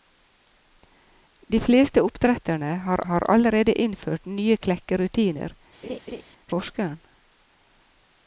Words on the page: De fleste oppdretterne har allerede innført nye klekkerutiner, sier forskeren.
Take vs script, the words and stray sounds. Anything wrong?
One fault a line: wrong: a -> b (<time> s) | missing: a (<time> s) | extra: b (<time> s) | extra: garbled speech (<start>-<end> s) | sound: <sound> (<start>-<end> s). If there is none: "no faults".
extra: har (3.1 s)
missing: sier (5.6 s)
sound: laugh (5.8-6.2 s)